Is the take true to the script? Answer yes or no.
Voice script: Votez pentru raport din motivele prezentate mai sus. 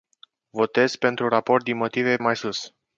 no